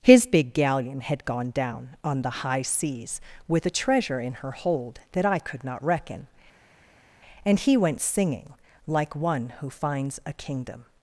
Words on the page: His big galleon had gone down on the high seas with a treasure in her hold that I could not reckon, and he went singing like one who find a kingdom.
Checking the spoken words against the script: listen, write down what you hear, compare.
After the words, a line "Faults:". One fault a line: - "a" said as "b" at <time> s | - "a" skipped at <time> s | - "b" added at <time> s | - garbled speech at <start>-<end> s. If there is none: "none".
His big galleon had gone down on the high seas with a treasure in her hold that I could not reckon, and he went singing like one who finds a kingdom.
Faults:
- "find" said as "finds" at 9.7 s